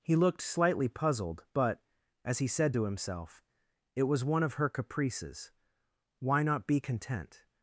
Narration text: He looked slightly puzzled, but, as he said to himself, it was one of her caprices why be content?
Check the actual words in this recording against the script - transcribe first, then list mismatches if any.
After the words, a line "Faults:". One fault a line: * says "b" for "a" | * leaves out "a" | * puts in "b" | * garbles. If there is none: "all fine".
He looked slightly puzzled, but, as he said to himself, it was one of her caprices why not be content?
Faults:
* puts in "not"